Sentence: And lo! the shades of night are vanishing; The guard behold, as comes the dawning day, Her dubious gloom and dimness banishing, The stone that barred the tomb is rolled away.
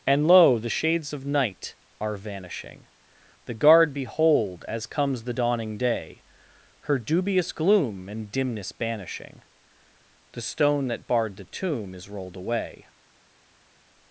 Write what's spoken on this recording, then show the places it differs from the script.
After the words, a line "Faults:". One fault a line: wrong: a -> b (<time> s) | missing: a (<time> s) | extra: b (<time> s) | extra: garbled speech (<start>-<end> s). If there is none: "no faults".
And lo! the shades of night are vanishing; The guard behold, as comes the dawning day, Her dubious gloom and dimness banishing, The stone that barred the tomb is rolled away.
Faults:
no faults